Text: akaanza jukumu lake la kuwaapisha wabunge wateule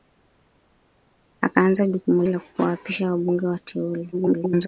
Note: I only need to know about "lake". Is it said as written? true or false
false